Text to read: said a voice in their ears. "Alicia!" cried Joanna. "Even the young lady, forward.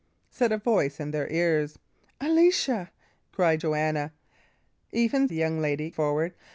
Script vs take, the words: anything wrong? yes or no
no